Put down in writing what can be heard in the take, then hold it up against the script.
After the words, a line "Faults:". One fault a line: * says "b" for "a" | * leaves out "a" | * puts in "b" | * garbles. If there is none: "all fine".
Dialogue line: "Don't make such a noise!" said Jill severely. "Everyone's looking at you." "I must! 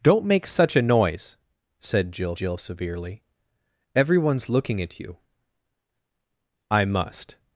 "Don't make such a noise!" said Jill Jill severely. "Everyone's looking at you." "I must!
Faults:
* puts in "Jill"